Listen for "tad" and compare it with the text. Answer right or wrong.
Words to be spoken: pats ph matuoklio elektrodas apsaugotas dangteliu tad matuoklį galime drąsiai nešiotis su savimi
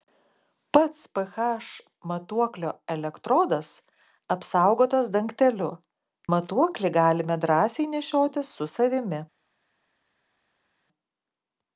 wrong